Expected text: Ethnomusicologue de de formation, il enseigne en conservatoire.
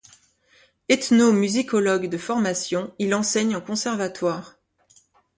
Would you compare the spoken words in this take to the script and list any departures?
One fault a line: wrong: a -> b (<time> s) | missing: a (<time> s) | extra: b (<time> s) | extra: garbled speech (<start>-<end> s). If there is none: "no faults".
missing: de (2.2 s)